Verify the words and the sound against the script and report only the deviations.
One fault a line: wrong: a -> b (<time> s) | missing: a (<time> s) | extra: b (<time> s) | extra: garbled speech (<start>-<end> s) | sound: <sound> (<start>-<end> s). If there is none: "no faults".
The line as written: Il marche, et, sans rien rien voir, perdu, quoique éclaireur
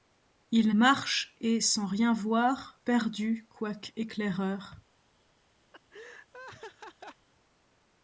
missing: rien (2.1 s)
sound: laugh (5.7-7.3 s)